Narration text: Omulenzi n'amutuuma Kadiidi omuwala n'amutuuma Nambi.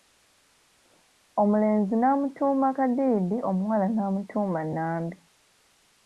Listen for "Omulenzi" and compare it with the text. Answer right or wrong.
right